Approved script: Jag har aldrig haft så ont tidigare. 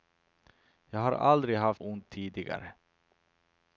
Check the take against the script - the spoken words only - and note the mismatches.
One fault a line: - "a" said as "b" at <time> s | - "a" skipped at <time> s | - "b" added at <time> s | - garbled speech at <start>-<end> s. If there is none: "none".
- "så" skipped at 1.8 s